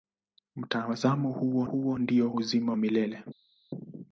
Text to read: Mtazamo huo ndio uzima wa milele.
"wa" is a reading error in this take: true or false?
true